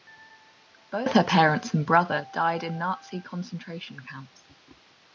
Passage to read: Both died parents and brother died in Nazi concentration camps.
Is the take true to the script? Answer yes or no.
no